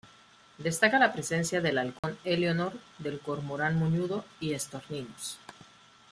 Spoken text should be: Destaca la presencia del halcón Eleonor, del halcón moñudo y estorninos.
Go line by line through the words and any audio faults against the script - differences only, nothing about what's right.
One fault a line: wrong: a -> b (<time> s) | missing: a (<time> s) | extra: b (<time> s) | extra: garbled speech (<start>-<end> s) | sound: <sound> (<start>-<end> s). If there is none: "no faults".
sound: dropout (2.0-2.0 s)
wrong: halcón -> cormorán (3.2 s)